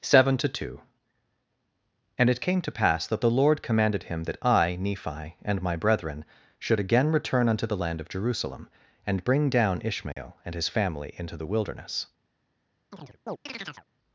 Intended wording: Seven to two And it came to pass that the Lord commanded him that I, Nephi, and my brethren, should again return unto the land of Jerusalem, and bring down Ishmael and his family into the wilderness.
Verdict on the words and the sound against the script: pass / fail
fail